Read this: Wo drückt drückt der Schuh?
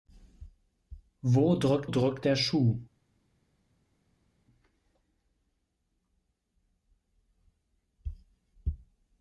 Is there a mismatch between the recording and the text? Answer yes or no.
no